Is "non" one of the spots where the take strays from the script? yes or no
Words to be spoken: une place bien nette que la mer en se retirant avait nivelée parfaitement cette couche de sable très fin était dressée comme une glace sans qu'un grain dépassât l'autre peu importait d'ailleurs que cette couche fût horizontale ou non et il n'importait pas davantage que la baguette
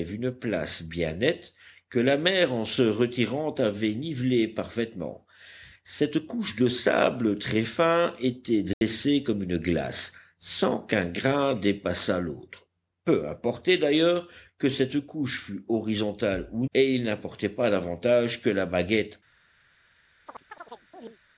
yes